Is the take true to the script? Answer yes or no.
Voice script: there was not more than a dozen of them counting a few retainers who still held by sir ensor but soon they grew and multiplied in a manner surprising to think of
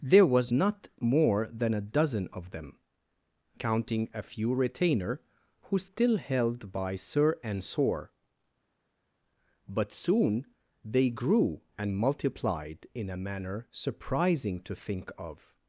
no